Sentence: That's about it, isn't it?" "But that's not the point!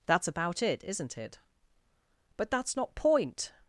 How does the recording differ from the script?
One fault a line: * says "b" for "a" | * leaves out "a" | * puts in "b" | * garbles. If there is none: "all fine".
* leaves out "the"